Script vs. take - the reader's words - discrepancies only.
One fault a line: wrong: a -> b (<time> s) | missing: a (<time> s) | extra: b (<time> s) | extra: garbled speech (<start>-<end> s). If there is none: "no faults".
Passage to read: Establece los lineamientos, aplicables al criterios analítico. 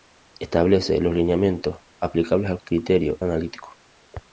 no faults